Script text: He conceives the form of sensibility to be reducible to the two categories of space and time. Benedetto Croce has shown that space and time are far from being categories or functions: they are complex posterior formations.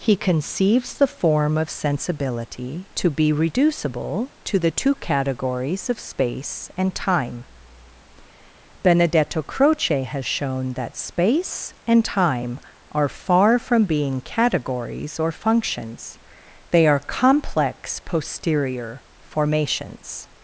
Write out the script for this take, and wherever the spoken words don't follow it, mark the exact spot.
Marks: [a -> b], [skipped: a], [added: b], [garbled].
He conceives the form of sensibility to be reducible to the two categories of space and time. Benedetto Croce has shown that space and time are far from being categories or functions: they are complex posterior formations.